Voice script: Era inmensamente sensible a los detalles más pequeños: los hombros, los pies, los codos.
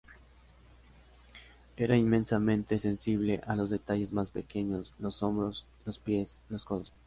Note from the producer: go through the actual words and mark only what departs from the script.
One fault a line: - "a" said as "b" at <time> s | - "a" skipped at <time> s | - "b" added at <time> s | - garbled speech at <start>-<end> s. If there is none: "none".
none